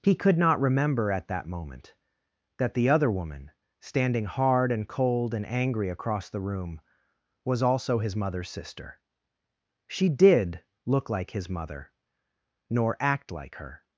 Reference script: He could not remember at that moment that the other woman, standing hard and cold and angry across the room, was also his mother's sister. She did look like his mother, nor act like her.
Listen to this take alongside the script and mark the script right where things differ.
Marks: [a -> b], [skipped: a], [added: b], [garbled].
He could not remember at that moment that the other woman, standing hard and cold and angry across the room, was also his mother's sister. She did look like his mother, nor act like her.